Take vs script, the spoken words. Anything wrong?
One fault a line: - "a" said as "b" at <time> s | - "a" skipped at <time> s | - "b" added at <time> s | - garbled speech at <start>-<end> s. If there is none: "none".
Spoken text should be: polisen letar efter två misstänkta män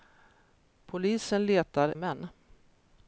- "efter två misstänkta" skipped at 1.9 s